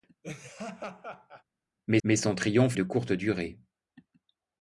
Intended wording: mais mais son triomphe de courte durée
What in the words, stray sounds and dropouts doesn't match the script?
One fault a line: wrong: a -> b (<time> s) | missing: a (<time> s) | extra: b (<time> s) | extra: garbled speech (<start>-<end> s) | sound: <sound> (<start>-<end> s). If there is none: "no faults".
sound: laugh (0.2-1.4 s)